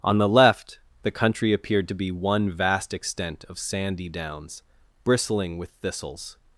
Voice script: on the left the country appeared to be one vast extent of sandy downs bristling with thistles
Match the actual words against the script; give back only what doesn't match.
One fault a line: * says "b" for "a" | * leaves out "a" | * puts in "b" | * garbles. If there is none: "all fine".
all fine